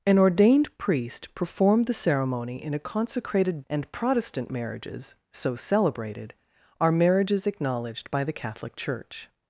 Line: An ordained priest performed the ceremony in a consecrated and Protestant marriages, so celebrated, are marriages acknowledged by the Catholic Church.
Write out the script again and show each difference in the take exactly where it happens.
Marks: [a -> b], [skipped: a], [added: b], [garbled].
An ordained priest performed the ceremony in a consecrated and Protestant marriages, so celebrated, are marriages acknowledged by the Catholic Church.